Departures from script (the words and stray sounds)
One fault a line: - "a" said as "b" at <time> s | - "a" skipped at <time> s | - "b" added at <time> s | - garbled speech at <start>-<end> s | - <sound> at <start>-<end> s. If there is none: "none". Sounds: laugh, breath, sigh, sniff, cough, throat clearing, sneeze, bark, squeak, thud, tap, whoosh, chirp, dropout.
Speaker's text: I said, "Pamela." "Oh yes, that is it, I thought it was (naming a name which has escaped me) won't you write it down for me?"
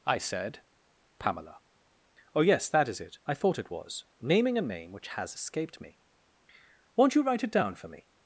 none